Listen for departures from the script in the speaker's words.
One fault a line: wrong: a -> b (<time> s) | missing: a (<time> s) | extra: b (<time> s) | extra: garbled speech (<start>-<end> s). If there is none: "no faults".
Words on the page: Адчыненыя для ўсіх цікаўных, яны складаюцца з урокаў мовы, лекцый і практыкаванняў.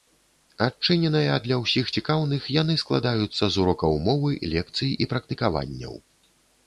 no faults